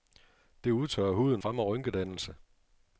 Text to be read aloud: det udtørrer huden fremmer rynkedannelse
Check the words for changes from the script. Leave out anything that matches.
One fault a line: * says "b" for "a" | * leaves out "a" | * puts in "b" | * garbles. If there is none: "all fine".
all fine